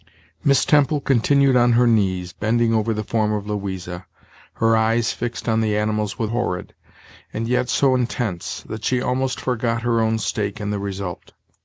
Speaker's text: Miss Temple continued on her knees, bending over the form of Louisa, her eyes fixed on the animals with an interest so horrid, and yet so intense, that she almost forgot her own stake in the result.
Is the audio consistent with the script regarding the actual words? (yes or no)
no